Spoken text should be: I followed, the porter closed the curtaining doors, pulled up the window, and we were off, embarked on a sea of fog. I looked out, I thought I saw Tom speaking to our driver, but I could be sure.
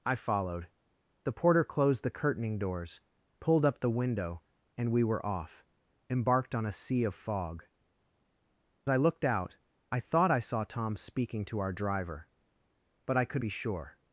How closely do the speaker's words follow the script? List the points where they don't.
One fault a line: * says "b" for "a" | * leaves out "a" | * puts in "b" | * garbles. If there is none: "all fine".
all fine